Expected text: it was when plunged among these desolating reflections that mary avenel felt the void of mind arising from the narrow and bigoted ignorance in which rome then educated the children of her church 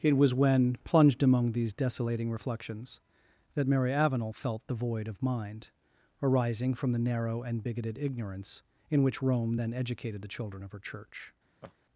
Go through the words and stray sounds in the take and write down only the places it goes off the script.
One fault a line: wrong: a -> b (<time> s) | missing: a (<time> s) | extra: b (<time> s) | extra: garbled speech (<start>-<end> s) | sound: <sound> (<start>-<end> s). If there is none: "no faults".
sound: laugh (11.6-11.7 s)